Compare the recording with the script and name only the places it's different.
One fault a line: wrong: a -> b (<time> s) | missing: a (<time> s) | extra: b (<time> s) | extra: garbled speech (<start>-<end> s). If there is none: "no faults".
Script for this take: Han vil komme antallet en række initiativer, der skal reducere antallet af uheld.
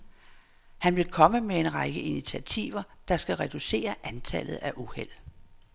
wrong: antallet -> med (1.4 s)